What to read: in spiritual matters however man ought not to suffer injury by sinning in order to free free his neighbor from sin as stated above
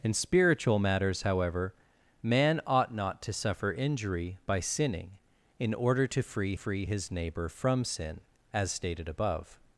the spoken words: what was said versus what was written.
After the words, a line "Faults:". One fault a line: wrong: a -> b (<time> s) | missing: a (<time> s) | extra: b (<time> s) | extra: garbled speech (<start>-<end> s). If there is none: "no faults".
in spiritual matters however man ought not to suffer injury by sinning in order to free free his neighbor from sin as stated above
Faults:
no faults